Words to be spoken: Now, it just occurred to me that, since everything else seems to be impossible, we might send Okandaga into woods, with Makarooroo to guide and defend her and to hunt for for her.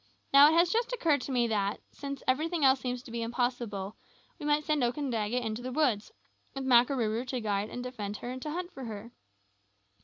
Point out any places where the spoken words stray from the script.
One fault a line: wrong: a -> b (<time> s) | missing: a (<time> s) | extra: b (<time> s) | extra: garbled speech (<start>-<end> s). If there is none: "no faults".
extra: has (0.6 s)
extra: the (5.6 s)
missing: for (8.9 s)